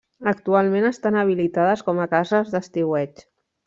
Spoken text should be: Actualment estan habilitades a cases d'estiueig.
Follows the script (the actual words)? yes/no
no